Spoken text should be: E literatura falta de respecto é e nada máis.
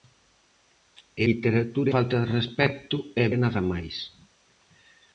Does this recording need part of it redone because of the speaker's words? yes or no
no